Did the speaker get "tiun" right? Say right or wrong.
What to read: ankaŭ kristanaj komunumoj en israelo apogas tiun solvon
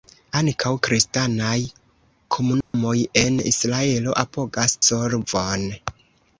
wrong